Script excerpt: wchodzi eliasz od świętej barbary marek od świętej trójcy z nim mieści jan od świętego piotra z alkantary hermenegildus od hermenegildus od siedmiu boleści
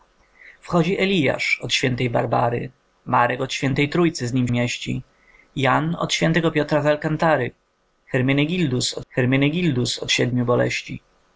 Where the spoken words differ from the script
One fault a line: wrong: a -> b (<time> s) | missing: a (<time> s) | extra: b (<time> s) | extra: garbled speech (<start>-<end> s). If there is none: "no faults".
no faults